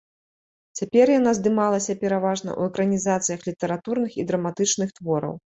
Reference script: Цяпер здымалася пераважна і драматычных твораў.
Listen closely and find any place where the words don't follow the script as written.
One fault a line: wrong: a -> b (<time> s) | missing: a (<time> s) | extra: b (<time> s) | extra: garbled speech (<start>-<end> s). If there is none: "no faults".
extra: яна (1.2 s)
extra: ў экранізацыях літаратурных (2.6 s)